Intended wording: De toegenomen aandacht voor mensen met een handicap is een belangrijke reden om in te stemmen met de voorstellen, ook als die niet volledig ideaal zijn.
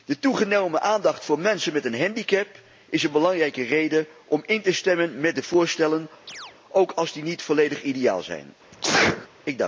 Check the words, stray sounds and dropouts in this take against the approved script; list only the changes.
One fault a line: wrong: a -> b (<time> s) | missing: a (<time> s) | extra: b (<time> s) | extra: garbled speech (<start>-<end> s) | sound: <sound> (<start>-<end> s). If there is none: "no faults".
sound: chirp (6.3-6.6 s)
sound: sneeze (8.7-9.3 s)